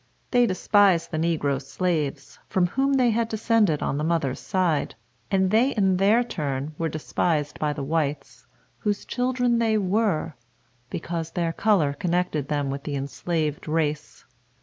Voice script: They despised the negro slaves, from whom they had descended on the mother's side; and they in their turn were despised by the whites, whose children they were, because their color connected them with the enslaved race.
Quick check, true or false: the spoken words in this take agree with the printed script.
true